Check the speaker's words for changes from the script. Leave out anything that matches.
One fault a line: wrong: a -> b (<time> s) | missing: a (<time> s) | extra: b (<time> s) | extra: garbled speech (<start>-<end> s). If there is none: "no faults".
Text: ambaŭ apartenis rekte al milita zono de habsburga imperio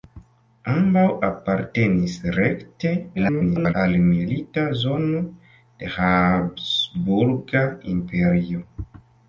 extra: garbled speech (3.1-3.7 s)